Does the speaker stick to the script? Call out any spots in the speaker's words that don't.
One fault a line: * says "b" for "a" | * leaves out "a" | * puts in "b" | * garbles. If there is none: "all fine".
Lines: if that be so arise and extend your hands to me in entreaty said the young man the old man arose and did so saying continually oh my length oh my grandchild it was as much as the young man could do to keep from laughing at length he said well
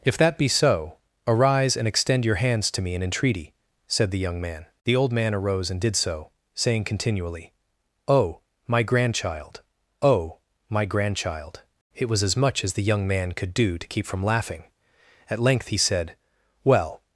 * says "grandchild" for "length"